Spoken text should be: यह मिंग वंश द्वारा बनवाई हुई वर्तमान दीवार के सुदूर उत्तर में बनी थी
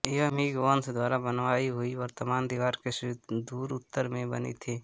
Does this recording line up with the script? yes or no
yes